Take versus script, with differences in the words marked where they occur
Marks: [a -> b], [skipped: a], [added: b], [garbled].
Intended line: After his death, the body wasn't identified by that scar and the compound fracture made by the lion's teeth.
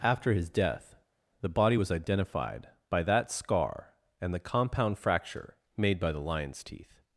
After his death, the body [wasn't -> was] identified by that scar and the compound fracture made by the lion's teeth.